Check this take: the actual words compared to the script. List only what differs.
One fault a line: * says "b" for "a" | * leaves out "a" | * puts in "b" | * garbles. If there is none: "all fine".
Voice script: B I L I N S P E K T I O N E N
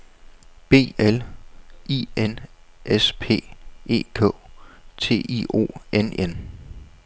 * leaves out "I"
* leaves out "E"